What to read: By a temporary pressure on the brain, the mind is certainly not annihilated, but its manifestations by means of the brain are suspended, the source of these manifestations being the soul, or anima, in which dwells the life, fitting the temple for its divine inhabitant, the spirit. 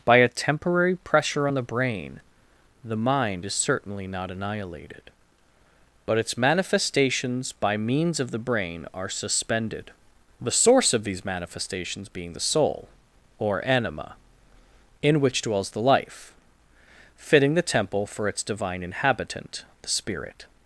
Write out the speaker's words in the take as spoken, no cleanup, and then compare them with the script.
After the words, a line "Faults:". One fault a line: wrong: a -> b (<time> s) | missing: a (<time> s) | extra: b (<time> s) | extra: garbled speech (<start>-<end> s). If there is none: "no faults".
By a temporary pressure on the brain, the mind is certainly not annihilated, but its manifestations by means of the brain are suspended, the source of these manifestations being the soul, or anima, in which dwells the life, fitting the temple for its divine inhabitant, the spirit.
Faults:
no faults